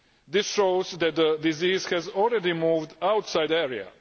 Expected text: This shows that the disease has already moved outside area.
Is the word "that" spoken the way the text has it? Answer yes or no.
yes